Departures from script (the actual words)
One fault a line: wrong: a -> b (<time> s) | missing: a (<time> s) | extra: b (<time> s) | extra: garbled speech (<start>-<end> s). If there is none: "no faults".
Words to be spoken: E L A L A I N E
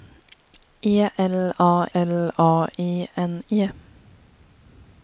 no faults